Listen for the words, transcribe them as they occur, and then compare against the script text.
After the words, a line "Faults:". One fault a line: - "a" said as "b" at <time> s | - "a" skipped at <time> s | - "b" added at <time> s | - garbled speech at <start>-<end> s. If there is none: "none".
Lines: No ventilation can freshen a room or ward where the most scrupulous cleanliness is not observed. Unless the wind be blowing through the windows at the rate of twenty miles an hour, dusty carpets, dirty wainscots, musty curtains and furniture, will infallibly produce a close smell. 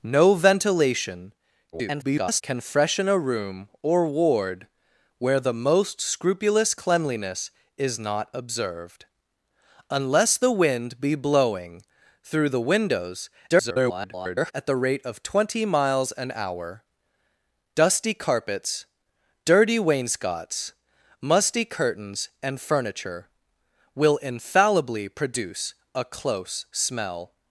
No ventilation [garbled] can freshen a room or ward where the most scrupulous cleanliness is not observed. Unless the wind be blowing through the windows [garbled] at the rate of twenty miles an hour, dusty carpets, dirty wainscots, musty curtains and furniture, will infallibly produce a close smell.
Faults:
- garbled speech at 1.7-2.4 s
- garbled speech at 13.5-14.5 s